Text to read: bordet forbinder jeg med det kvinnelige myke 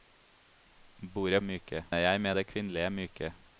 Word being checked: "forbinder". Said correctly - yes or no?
no